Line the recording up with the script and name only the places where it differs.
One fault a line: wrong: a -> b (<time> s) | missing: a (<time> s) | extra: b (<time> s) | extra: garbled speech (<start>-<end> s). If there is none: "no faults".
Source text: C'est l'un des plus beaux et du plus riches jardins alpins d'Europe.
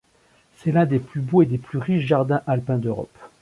wrong: du -> des (1.4 s)